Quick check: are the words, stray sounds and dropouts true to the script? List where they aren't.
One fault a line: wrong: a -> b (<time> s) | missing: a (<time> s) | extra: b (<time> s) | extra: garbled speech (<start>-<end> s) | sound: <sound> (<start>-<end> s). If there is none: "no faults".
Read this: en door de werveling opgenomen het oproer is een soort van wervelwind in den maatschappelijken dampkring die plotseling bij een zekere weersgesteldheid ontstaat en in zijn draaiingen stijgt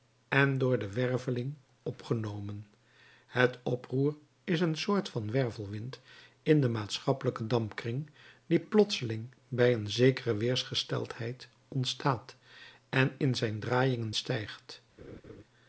sound: laugh (15.0-15.4 s)